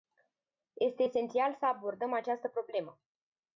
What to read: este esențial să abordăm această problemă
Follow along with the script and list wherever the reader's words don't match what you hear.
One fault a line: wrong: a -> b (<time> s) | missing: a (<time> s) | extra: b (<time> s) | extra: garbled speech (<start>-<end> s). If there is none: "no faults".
no faults